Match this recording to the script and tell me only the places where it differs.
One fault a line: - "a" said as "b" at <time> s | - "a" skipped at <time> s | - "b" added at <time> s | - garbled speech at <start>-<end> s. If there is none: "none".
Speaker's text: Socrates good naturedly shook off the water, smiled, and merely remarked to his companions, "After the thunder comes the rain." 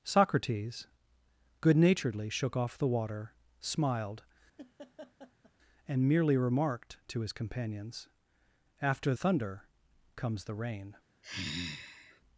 - "the" skipped at 9.1 s